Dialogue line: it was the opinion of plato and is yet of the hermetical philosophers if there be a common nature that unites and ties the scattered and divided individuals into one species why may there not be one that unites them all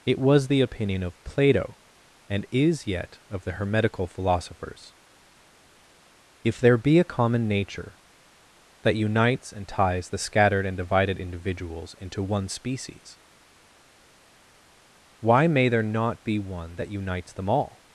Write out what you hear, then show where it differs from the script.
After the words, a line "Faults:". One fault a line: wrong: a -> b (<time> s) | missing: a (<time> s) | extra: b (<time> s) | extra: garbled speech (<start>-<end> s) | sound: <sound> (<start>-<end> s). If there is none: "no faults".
it was the opinion of plato and is yet of the hermetical philosophers if there be a common nature that unites and ties the scattered and divided individuals into one species why may there not be one that unites them all
Faults:
no faults